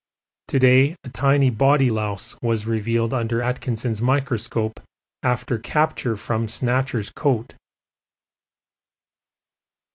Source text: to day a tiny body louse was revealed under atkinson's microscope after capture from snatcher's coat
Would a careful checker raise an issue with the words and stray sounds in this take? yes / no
no